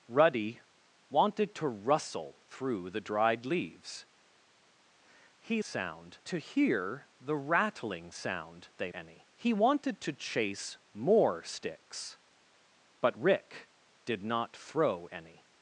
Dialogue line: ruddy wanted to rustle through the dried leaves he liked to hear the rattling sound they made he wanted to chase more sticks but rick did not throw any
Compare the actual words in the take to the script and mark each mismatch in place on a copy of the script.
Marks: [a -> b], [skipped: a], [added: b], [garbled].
ruddy wanted to rustle through the dried leaves he [liked -> sound] to hear the rattling sound they [made -> any] he wanted to chase more sticks but rick did not throw any